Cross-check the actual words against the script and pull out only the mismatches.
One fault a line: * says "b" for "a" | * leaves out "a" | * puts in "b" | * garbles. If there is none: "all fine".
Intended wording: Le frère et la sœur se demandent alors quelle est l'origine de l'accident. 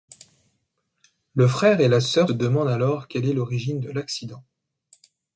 * leaves out "se"